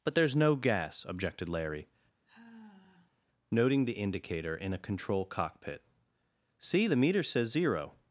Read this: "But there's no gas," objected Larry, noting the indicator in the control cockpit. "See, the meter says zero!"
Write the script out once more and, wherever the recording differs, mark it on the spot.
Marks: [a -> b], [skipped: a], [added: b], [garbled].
"But there's no gas," objected Larry, noting the indicator in [the -> a] control cockpit. "See, the meter says zero!"